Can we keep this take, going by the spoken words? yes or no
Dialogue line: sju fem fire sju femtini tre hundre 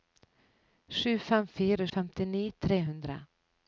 no